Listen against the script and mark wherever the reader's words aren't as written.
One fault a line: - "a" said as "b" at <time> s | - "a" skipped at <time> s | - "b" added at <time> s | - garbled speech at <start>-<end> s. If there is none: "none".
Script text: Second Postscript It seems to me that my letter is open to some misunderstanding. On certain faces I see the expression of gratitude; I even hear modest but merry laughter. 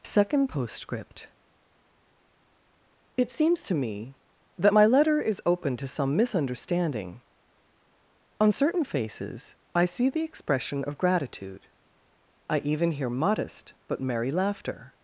none